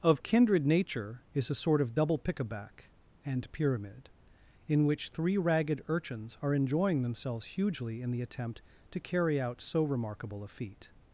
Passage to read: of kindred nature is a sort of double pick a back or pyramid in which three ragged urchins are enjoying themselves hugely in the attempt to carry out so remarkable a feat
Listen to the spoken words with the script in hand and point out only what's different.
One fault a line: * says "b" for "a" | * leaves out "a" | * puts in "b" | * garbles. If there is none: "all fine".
* says "and" for "or"